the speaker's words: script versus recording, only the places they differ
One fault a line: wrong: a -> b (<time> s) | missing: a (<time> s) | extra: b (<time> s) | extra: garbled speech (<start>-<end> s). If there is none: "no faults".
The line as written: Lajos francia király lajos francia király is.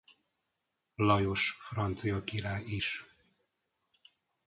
missing: lajos francia király (2.8 s)